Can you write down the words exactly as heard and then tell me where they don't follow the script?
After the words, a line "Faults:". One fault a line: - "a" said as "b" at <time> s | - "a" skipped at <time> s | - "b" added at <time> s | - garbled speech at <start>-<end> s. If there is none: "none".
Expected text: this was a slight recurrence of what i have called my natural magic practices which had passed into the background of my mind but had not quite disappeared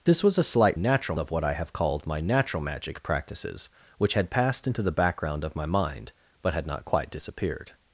this was a slight natural of what i have called my natural magic practices which had passed into the background of my mind but had not quite disappeared
Faults:
- "recurrence" said as "natural" at 0.7 s